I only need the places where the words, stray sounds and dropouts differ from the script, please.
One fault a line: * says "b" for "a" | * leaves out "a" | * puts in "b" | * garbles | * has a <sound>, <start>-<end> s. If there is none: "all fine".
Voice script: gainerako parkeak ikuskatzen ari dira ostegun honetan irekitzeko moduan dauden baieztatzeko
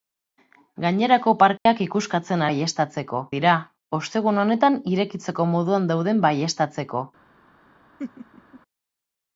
* has a dropout, 1.6-1.7 s
* says "baieztatzeko" for "ari"
* has a laugh, 8.0-8.6 s